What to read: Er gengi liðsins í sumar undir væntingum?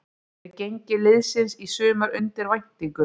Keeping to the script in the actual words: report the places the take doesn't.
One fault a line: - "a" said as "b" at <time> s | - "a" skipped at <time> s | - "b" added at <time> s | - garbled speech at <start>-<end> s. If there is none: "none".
none